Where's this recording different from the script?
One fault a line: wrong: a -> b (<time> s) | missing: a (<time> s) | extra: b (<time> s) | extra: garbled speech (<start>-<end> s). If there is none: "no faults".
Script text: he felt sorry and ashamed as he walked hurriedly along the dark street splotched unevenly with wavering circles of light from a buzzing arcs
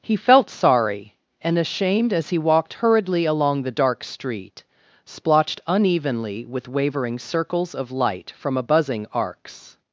no faults